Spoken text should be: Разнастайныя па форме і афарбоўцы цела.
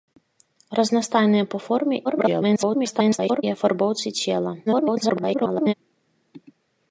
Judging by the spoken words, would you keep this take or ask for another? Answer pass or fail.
fail